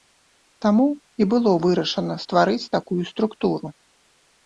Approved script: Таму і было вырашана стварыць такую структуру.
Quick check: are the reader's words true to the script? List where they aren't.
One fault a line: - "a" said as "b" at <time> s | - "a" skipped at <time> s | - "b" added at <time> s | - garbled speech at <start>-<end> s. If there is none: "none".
none